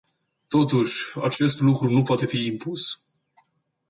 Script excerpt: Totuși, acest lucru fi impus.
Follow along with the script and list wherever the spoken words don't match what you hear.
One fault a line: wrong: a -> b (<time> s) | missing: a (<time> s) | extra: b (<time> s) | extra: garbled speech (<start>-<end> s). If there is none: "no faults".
extra: nu poate (1.9 s)